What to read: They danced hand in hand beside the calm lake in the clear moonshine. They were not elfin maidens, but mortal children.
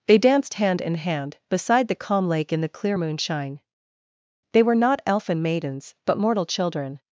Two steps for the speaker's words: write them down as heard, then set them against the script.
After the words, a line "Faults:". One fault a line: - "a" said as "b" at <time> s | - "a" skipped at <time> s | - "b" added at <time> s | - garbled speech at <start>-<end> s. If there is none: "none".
They danced hand in hand beside the calm lake in the clear moonshine. They were not elfin maidens, but mortal children.
Faults:
none